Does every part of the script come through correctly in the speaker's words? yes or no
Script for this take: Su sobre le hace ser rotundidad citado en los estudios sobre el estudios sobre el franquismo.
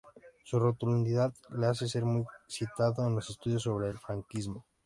no